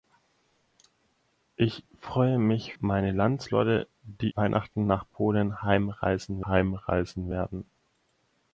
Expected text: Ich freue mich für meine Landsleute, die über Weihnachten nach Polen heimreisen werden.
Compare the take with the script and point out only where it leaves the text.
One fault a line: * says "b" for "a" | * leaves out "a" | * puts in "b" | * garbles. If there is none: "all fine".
* leaves out "für"
* leaves out "über"
* puts in "heimreisen"